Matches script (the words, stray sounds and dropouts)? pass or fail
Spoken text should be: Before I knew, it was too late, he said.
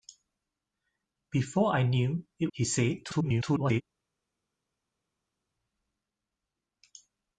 fail